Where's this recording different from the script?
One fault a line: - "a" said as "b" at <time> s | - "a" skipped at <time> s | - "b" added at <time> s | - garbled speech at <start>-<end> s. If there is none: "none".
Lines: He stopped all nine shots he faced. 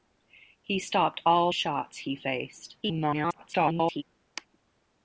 - "nine" skipped at 1.5 s
- garbled speech at 2.8-4.0 s